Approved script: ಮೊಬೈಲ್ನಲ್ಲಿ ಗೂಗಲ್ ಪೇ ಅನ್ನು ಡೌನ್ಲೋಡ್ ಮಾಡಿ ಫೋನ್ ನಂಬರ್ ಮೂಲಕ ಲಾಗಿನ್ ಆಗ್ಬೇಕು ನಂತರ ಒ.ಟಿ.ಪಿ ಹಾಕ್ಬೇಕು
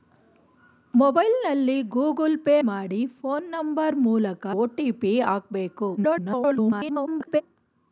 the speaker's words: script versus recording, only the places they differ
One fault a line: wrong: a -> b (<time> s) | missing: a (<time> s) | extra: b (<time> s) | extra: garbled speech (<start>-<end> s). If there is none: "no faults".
missing: ಅನ್ನು ಡೌನ್ಲೋಡ್ (2.5 s)
missing: ಲಾಗಿನ್ ಆಗ್ಬೇಕು ನಂತರ (4.5 s)
extra: garbled speech (6.0-7.4 s)